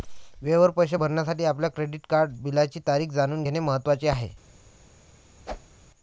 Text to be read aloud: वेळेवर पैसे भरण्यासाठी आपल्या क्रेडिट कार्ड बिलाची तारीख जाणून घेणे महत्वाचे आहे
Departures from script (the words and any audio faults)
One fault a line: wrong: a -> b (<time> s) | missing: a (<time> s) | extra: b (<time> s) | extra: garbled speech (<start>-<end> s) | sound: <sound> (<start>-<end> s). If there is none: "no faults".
sound: whoosh (5.4-5.8 s)